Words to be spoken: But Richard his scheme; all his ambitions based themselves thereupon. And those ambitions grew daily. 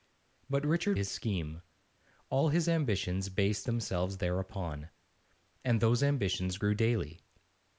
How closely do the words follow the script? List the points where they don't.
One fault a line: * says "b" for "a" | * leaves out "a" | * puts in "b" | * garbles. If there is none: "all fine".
all fine